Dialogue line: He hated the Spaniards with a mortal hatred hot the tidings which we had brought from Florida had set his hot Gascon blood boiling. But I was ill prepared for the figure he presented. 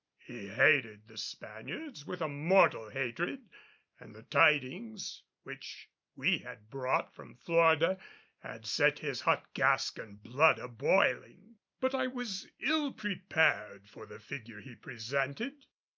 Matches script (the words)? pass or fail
fail